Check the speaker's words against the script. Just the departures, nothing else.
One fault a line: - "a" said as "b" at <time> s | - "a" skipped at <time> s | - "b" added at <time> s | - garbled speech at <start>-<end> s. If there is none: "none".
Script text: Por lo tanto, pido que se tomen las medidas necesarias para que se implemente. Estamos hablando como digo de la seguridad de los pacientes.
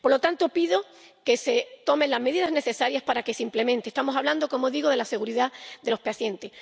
none